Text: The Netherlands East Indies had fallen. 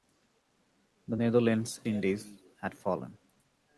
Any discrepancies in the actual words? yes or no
yes